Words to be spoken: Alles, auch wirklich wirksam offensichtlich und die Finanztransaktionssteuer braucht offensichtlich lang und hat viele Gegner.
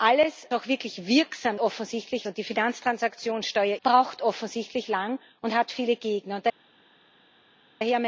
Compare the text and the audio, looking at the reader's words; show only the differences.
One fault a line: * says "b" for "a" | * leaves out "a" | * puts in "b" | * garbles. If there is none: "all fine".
all fine